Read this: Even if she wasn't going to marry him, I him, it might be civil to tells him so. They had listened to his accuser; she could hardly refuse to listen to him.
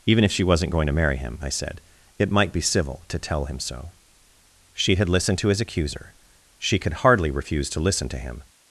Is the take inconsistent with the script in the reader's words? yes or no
yes